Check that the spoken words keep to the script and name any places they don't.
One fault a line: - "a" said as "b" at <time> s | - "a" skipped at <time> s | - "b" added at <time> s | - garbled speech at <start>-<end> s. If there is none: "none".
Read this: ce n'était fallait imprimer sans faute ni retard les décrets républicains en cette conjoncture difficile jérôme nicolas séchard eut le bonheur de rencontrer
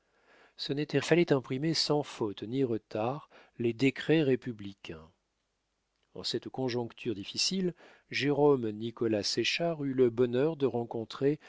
none